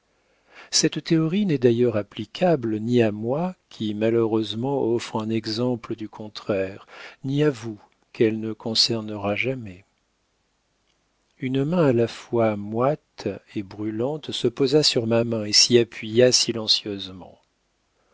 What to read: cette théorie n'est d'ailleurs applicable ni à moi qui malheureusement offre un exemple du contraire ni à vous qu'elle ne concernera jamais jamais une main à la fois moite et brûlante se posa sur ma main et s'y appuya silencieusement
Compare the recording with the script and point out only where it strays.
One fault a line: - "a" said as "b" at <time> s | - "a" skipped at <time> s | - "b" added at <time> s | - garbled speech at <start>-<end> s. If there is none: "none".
- "jamais" skipped at 9.8 s